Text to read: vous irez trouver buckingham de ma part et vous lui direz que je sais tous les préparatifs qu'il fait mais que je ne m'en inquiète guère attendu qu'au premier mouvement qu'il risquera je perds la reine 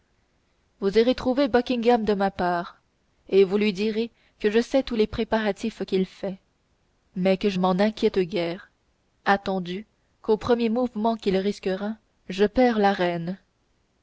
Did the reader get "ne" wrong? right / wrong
wrong